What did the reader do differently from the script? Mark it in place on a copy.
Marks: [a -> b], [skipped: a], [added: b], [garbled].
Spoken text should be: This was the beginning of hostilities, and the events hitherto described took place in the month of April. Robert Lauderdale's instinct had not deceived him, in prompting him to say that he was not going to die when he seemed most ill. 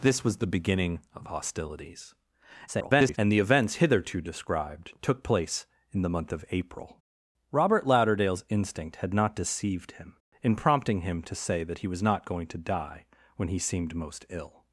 This was the beginning of hostilities, [garbled] and the events hitherto described took place in the month of April. Robert Lauderdale's instinct had not deceived him, in prompting him to say that he was not going to die when he seemed most ill.